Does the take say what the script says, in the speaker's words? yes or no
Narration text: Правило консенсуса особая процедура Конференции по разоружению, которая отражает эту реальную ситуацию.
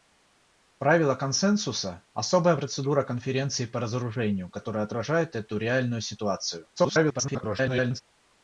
no